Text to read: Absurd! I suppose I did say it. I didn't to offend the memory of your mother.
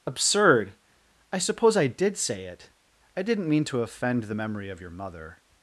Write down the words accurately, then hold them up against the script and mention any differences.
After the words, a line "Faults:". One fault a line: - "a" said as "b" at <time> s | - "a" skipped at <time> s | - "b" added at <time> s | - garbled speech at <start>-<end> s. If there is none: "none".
Absurd! I suppose I did say it. I didn't mean to offend the memory of your mother.
Faults:
- "mean" added at 3.5 s